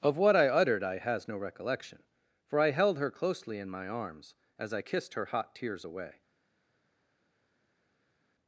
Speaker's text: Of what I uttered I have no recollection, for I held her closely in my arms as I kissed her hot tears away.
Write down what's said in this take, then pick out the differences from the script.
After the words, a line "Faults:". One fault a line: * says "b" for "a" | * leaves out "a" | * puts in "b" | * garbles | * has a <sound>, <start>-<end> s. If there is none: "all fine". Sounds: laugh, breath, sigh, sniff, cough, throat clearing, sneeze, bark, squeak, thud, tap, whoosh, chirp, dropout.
Of what I uttered I has no recollection, for I held her closely in my arms as I kissed her hot tears away.
Faults:
* says "has" for "have"